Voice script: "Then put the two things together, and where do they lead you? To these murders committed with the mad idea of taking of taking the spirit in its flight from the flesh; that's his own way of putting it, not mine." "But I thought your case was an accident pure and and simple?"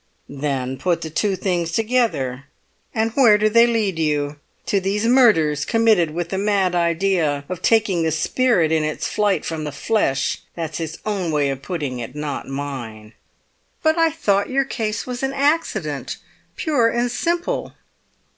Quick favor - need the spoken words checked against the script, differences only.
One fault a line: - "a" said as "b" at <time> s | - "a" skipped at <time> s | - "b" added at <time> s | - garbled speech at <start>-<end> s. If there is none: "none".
- "of taking" skipped at 8.0 s
- "and" skipped at 17.1 s